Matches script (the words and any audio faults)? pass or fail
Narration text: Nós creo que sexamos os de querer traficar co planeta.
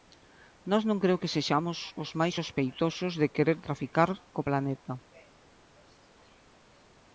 fail